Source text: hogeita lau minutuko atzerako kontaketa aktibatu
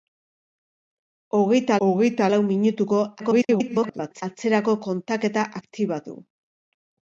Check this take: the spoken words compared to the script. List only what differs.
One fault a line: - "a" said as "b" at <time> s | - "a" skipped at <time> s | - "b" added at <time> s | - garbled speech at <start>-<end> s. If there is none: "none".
- "hogeita" added at 1.9 s
- garbled speech at 3.2-4.2 s